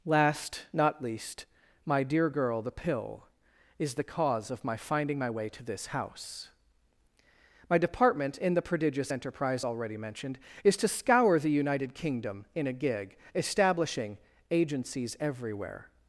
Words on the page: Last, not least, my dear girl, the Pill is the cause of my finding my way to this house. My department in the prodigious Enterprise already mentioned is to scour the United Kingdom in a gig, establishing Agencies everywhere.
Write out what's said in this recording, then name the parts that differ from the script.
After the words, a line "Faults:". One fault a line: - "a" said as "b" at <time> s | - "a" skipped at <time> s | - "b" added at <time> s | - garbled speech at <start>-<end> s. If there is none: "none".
Last, not least, my dear girl, the Pill is the cause of my finding my way to this house. My department in the prodigious Enterprise already mentioned is to scour the United Kingdom in a gig, establishing Agencies everywhere.
Faults:
none